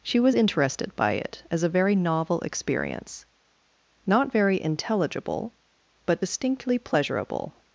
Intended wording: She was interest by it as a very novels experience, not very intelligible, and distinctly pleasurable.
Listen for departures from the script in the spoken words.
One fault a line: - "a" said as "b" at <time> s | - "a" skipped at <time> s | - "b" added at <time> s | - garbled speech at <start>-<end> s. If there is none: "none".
- "interest" said as "interested" at 0.3 s
- "novels" said as "novel" at 1.9 s
- "and" said as "but" at 6.1 s